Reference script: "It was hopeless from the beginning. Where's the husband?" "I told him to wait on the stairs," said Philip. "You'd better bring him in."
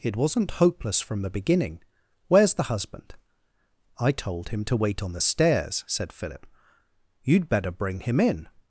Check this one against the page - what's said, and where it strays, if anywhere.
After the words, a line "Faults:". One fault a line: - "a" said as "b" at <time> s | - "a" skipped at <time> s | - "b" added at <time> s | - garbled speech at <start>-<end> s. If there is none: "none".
"It wasn't hopeless from the beginning. Where's the husband?" "I told him to wait on the stairs," said Philip. "You'd better bring him in."
Faults:
- "was" said as "wasn't" at 0.1 s